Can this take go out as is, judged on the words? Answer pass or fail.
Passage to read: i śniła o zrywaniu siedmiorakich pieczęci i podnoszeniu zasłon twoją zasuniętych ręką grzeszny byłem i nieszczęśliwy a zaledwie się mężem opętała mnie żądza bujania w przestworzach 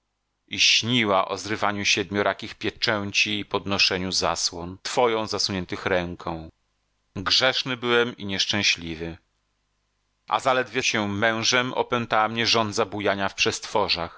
pass